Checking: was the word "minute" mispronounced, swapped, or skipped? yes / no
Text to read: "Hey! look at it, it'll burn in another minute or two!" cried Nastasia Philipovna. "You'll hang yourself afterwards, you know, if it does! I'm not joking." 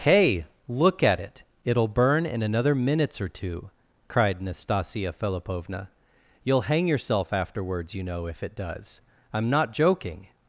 yes